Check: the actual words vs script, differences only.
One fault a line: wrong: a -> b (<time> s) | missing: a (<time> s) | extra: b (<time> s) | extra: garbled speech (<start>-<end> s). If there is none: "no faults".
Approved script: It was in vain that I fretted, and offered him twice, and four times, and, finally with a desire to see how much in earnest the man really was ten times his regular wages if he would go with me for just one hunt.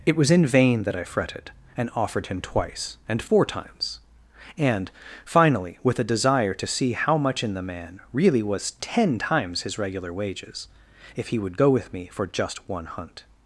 missing: earnest (7.5 s)